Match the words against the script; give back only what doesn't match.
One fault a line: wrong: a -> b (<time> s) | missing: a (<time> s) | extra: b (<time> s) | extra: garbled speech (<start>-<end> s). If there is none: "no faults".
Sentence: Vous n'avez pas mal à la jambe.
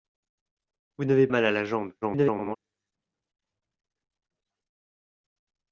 missing: pas (1.3 s)
extra: garbled speech (2.0-2.6 s)